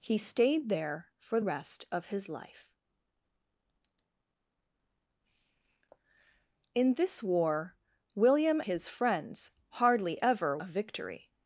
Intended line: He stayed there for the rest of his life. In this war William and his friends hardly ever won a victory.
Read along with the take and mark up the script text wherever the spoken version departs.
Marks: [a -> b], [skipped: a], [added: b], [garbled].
He stayed there for [skipped: the] rest of his life. In this war William [skipped: and] his friends hardly ever [skipped: won] a victory.